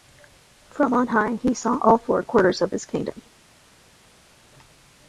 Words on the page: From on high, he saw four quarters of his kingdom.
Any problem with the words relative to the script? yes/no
yes